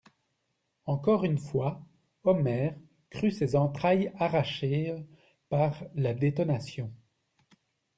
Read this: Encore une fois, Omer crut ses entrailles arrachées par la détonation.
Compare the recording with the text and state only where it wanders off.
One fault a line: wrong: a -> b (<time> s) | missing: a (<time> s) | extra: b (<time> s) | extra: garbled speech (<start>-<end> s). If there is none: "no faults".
no faults